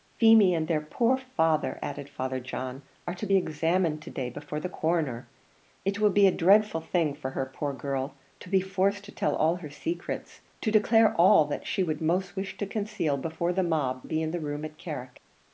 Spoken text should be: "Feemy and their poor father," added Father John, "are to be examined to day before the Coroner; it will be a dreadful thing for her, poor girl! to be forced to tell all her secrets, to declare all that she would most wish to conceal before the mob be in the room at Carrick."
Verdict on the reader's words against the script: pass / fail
pass